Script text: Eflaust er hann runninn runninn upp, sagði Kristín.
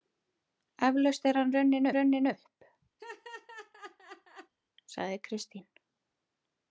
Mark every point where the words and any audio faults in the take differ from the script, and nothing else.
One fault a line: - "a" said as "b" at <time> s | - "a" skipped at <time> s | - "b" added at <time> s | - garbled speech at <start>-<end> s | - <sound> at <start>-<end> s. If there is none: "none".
- laugh at 3.0-4.5 s